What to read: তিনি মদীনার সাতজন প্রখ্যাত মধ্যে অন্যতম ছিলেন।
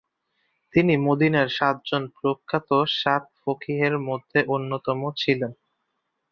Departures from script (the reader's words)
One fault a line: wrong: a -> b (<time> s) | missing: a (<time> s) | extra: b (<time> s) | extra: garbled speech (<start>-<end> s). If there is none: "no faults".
extra: সাত ফকীহের (3.0 s)